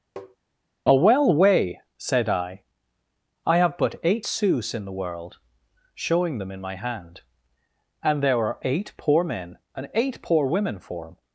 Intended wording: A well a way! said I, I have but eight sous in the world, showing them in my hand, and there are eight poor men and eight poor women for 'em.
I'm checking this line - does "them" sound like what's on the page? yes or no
yes